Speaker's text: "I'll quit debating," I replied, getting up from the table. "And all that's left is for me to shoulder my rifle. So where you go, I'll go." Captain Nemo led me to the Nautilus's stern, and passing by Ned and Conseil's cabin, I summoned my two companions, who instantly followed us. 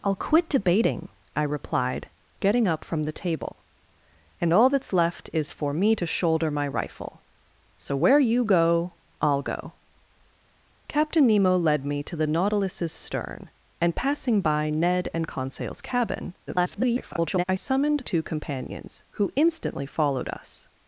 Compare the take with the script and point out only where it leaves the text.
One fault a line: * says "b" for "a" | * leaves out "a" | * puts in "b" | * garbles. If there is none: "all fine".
* garbles
* leaves out "my"